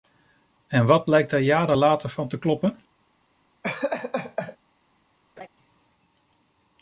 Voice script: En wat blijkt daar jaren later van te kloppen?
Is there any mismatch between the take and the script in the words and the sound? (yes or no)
yes